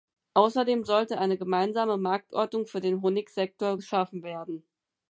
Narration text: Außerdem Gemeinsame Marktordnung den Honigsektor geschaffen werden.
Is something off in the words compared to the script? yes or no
yes